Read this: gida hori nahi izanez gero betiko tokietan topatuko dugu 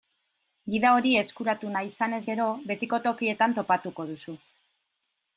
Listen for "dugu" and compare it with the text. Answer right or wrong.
wrong